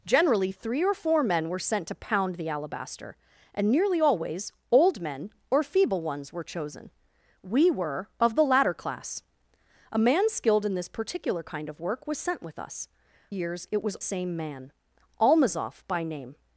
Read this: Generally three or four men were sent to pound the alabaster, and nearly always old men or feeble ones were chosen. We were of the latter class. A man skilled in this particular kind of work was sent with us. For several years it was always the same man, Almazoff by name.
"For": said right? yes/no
no